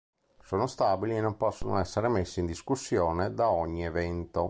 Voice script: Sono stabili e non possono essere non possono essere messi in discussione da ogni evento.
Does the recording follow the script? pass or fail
fail